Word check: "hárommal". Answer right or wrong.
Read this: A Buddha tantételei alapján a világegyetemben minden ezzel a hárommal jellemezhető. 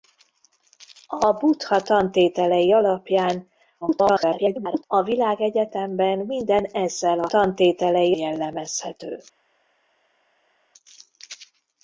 wrong